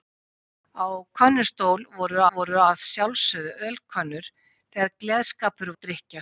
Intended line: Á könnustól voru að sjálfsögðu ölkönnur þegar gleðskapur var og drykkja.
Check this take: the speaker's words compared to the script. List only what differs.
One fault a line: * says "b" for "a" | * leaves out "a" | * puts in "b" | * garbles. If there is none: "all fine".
* puts in "voru"
* leaves out "var"